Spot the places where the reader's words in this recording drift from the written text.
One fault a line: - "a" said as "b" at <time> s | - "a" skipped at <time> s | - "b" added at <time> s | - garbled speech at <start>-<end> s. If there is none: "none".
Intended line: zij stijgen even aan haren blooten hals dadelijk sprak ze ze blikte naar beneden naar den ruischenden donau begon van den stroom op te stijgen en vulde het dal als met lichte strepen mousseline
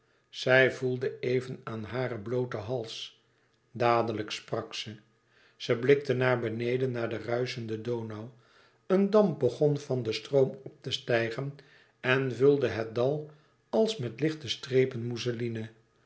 - "stijgen" said as "voelde" at 0.7 s
- "een damp" added at 8.9 s